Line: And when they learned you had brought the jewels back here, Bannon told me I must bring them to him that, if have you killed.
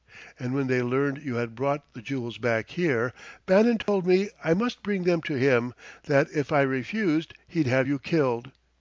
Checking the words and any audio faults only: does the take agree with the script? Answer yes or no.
no